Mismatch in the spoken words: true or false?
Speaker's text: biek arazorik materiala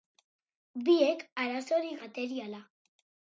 false